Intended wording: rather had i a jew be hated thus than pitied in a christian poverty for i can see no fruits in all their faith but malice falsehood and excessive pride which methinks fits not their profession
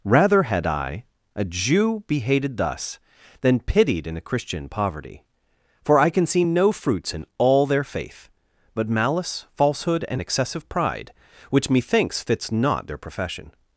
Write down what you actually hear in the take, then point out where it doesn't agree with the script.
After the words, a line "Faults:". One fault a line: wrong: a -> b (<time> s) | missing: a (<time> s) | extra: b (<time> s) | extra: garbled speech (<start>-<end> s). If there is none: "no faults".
rather had i a jew be hated thus than pitied in a christian poverty for i can see no fruits in all their faith but malice falsehood and excessive pride which methinks fits not their profession
Faults:
no faults